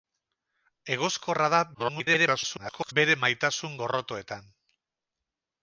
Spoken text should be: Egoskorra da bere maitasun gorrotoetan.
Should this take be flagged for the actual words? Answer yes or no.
yes